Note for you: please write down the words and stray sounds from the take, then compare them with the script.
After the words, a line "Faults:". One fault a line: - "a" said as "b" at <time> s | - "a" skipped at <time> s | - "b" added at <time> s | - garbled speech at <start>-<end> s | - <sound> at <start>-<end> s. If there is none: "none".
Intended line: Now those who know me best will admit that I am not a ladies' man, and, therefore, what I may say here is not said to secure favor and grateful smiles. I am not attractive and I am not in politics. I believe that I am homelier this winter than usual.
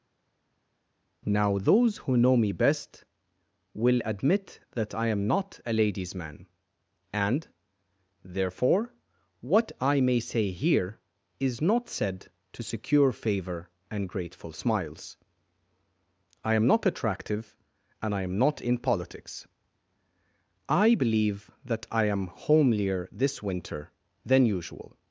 Now those who know me best will admit that I am not a ladies' man, and, therefore, what I may say here is not said to secure favor and grateful smiles. I am not attractive and I am not in politics. I believe that I am homelier this winter than usual.
Faults:
none